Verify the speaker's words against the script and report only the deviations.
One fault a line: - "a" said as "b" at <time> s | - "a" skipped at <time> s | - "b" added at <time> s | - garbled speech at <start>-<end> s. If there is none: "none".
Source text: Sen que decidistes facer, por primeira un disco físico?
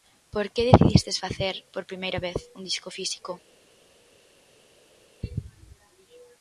- "Sen" said as "Por" at 0.3 s
- "vez" added at 2.3 s